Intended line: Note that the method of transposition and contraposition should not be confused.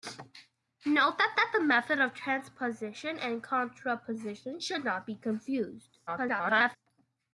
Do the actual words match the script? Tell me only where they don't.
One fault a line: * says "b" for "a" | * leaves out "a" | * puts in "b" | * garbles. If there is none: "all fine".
* puts in "that"
* garbles